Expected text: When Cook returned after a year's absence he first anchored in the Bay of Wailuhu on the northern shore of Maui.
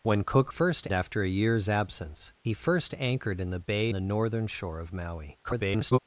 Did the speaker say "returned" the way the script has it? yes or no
no